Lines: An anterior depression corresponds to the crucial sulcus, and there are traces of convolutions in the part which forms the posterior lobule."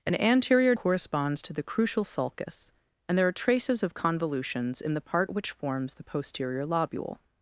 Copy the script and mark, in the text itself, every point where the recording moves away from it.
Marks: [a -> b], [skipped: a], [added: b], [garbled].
An anterior [skipped: depression] corresponds to the crucial sulcus, and there are traces of convolutions in the part which forms the posterior lobule."